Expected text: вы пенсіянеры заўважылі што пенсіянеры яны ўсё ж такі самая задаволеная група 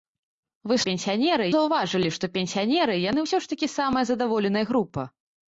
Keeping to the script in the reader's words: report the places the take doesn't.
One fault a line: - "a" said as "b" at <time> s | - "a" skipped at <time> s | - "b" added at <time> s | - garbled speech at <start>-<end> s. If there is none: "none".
none